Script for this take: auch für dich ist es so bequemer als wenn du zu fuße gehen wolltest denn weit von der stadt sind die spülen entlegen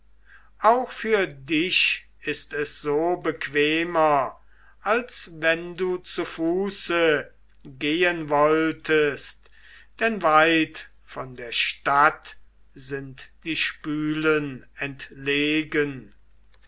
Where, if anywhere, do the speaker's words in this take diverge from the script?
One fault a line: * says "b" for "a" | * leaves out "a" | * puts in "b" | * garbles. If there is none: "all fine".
all fine